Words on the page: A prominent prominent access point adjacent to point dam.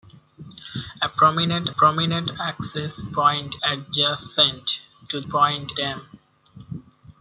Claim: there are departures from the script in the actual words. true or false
false